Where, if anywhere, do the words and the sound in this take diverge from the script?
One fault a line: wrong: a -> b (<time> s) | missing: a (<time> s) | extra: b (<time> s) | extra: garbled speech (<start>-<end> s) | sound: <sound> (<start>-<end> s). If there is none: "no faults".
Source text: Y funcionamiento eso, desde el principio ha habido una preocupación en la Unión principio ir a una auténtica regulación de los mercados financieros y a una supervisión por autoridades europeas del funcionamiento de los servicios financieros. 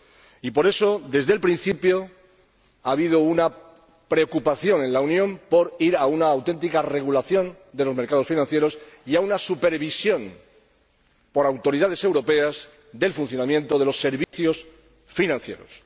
wrong: funcionamiento -> por (0.5 s)
wrong: principio -> por (5.5 s)
sound: dropout (14.2-14.3 s)